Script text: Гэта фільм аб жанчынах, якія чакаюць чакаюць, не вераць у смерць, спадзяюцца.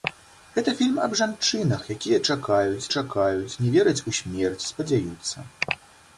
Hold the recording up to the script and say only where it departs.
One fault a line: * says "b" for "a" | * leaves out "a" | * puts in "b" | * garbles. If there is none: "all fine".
all fine